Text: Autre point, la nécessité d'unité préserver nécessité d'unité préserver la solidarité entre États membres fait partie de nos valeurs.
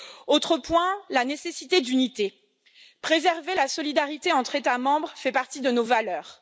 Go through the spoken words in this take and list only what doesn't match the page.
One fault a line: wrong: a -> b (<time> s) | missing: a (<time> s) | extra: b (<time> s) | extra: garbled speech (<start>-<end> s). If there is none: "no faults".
missing: nécessité d'unité préserver (3.5 s)